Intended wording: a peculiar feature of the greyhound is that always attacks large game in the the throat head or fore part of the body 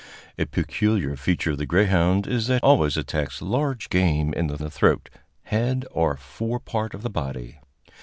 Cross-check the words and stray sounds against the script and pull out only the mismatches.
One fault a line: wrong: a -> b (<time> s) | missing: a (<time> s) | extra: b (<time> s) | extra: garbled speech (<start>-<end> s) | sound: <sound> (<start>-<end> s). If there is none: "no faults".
no faults